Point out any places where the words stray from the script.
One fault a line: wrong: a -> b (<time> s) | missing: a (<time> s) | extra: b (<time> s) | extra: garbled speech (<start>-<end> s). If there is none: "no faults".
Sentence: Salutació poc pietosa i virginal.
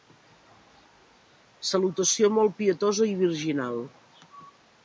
wrong: poc -> molt (2.4 s)